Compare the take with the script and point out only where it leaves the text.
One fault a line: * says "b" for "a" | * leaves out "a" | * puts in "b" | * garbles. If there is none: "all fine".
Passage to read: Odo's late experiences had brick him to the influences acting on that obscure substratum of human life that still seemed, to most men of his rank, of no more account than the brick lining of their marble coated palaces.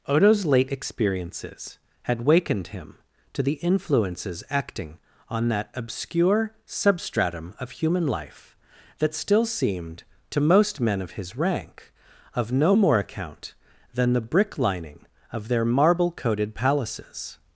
* says "wakened" for "brick"